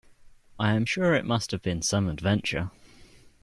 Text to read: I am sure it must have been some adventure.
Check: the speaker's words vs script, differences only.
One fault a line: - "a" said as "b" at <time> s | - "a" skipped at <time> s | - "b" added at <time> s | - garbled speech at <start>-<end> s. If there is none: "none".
none